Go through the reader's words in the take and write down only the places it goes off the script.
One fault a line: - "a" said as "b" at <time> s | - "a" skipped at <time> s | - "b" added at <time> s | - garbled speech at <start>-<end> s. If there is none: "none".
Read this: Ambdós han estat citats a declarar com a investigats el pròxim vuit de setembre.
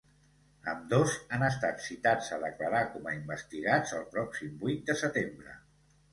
none